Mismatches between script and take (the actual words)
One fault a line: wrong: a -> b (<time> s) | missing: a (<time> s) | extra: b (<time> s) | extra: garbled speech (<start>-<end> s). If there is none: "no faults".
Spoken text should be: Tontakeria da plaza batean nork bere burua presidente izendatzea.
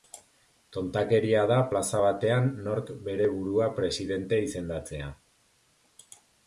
no faults